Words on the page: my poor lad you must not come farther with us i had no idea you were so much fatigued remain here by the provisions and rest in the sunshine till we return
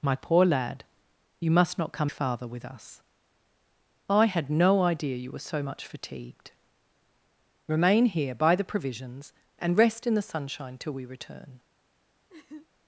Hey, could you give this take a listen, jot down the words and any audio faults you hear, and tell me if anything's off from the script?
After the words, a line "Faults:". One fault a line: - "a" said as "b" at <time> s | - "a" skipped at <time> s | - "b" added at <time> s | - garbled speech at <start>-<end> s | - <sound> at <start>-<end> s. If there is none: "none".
my poor lad you must not come farther with us i had no idea you were so much fatigued remain here by the provisions and rest in the sunshine till we return
Faults:
- laugh at 12.3-12.7 s